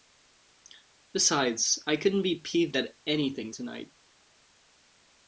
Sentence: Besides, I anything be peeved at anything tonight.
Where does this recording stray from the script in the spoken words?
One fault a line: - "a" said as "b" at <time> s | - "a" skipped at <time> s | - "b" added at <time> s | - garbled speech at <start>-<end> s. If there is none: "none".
- "anything" said as "couldn't" at 2.0 s